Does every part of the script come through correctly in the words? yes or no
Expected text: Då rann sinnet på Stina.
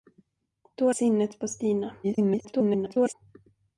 no